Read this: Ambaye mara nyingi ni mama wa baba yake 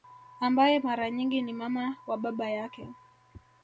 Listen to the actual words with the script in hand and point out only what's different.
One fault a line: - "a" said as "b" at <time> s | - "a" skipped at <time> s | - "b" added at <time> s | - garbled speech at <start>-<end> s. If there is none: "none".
none